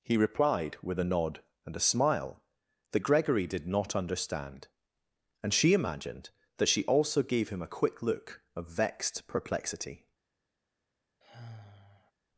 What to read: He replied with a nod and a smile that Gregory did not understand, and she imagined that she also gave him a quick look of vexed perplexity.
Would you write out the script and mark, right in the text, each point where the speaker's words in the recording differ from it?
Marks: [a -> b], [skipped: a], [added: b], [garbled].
He replied with a nod and a smile that Gregory did not understand, and she imagined that she also gave him a quick look of vexed perplexity.